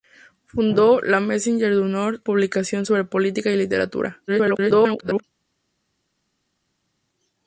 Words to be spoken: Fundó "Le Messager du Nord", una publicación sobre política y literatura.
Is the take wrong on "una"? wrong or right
wrong